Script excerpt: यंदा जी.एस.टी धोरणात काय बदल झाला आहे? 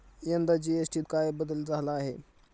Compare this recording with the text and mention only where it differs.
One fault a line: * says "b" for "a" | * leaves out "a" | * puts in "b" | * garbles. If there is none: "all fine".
* leaves out "धोरणात"